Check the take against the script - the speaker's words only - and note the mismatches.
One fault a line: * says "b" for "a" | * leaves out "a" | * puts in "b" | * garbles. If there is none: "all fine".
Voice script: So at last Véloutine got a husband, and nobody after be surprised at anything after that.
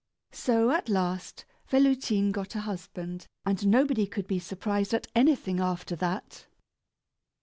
* says "could" for "after"